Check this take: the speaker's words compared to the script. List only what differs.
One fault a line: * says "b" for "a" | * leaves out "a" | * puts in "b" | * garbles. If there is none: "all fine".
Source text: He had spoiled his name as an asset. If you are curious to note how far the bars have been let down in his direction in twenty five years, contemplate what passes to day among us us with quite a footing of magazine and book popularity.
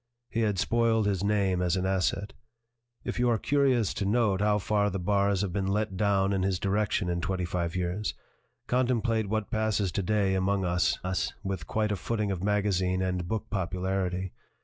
all fine